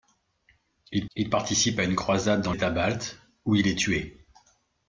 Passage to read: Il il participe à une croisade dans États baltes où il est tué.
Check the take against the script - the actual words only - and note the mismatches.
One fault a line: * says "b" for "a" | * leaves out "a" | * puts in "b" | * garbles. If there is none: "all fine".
all fine